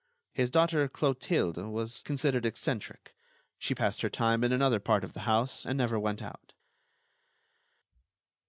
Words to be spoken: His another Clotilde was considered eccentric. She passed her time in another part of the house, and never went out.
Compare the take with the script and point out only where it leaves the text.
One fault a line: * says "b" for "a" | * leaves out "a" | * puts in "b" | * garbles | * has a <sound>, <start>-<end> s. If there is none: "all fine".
* says "daughter" for "another"